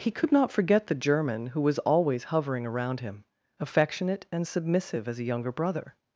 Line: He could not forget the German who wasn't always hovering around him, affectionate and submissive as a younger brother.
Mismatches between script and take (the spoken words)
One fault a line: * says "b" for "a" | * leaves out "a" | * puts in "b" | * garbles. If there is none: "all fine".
* says "was" for "wasn't"